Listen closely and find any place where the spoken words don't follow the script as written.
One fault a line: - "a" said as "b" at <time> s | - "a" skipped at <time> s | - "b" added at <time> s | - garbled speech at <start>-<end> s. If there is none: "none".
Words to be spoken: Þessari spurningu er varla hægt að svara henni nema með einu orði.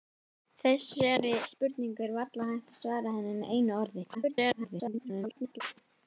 - "nema" skipped at 3.4 s
- garbled speech at 4.1-5.6 s